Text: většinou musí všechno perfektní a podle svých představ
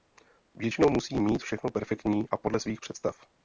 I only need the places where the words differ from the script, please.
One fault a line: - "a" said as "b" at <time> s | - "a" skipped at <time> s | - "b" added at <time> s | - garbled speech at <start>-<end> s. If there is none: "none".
- "mít" added at 1.2 s